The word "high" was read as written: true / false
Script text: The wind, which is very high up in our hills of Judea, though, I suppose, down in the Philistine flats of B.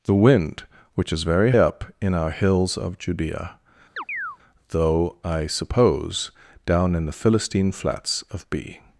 false